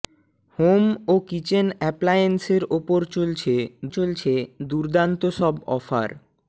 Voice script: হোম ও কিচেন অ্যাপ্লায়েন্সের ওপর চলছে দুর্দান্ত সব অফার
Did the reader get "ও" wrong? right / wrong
right